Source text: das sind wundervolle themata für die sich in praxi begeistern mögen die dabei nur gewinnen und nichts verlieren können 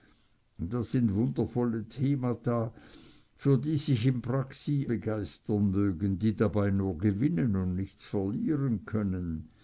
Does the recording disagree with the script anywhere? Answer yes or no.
no